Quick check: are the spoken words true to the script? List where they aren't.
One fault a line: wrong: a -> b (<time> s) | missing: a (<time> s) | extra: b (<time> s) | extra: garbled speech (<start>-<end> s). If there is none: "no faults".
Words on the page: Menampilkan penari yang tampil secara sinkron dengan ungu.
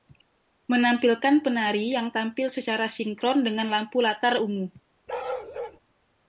extra: lampu latar (3.7 s)